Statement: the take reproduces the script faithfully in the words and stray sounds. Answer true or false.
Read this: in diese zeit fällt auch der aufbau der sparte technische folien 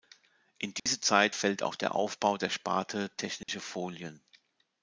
false